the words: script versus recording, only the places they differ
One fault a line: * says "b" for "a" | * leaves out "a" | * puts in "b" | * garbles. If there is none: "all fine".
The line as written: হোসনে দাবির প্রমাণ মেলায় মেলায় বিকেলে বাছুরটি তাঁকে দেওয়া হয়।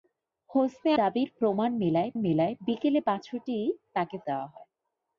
all fine